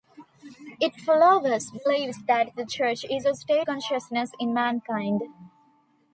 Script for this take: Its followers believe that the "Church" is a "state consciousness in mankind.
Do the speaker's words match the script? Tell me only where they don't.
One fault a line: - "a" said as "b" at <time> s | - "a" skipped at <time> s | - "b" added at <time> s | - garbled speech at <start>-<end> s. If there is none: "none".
none